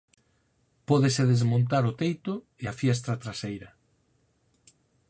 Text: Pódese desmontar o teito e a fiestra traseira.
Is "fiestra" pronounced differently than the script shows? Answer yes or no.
no